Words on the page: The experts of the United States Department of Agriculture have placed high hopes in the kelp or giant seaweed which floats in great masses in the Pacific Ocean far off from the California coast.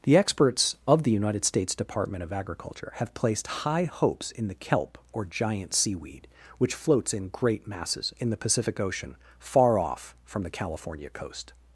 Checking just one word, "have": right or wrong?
right